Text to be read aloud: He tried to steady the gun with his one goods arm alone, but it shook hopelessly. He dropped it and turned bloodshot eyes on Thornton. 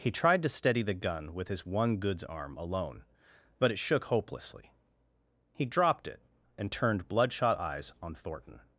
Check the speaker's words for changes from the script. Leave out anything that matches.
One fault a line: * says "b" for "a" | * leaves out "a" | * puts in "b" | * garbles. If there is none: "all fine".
all fine